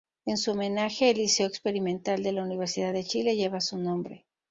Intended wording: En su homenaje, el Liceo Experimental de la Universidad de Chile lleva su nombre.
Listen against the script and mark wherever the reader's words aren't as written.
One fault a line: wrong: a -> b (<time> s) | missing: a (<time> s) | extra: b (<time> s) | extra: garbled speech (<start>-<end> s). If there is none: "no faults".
no faults